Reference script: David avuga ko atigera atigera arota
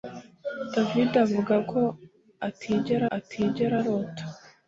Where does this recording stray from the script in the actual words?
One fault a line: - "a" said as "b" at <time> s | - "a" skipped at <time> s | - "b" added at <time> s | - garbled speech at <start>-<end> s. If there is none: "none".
none